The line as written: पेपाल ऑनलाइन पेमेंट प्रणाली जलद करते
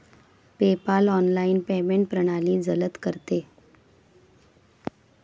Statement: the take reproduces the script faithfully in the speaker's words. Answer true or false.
true